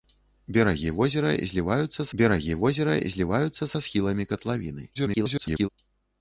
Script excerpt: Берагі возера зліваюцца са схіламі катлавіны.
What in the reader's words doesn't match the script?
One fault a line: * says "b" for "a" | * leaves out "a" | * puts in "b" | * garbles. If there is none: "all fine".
* puts in "берагі возера зліваюцца"
* garbles